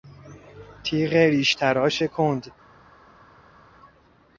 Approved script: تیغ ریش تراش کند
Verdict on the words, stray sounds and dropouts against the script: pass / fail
pass